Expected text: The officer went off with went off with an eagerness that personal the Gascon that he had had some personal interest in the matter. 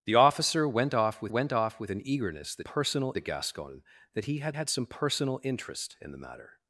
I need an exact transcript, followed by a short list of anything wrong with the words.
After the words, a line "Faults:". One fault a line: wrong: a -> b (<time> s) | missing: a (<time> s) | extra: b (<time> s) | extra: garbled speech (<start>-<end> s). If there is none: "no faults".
The officer went off with went off with an eagerness that personal the Gascon that he had had some personal interest in the matter.
Faults:
no faults